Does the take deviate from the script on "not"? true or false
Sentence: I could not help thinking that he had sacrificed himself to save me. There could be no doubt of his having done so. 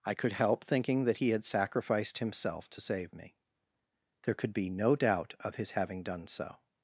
true